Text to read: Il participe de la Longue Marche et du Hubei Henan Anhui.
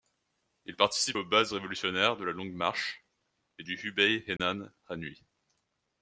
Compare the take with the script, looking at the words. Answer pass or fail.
fail